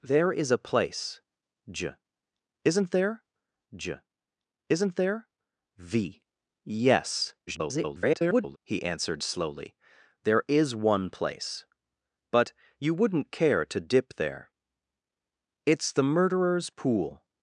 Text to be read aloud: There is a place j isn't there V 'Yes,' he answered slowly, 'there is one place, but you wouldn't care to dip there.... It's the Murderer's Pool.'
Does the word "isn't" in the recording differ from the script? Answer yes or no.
no